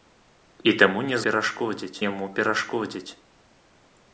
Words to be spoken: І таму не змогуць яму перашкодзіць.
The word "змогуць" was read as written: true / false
false